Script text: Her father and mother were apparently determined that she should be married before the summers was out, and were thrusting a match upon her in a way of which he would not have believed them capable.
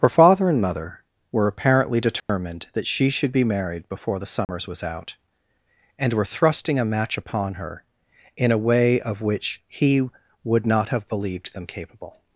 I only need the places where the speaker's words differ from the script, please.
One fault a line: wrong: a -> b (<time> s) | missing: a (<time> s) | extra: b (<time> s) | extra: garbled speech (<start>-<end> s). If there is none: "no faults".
no faults